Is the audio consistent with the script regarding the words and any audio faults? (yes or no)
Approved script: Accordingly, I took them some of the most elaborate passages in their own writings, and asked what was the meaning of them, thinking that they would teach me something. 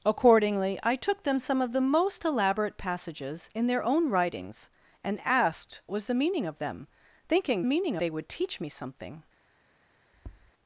no